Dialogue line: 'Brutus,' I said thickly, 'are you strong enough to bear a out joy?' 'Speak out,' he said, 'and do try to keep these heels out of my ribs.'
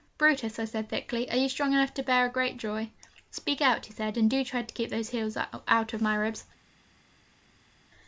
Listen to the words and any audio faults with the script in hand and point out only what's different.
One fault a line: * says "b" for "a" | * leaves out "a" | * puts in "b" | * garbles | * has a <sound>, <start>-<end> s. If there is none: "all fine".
* says "great" for "out"
* says "those" for "these"